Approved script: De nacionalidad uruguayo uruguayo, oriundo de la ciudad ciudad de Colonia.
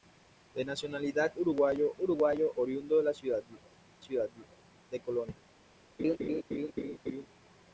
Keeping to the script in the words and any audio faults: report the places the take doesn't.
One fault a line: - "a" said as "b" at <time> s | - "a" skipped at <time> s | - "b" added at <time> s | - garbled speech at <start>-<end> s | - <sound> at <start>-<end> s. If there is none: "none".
- laugh at 6.0-7.3 s